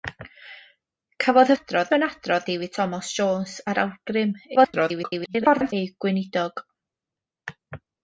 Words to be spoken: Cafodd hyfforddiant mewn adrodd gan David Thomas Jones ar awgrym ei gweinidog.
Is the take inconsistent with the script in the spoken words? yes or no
yes